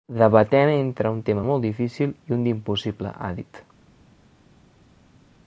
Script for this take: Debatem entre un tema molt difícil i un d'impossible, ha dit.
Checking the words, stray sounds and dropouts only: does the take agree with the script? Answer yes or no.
yes